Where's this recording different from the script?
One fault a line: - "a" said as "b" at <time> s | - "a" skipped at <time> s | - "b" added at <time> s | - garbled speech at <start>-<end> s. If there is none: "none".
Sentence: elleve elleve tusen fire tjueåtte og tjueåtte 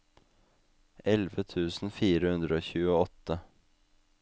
- "elleve" skipped at 1.4 s
- "tjueåtte" said as "hundre" at 2.4 s